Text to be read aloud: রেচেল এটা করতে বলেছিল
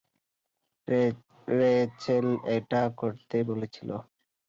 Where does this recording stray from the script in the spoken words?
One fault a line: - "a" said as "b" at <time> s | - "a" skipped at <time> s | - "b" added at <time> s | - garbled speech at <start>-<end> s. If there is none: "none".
none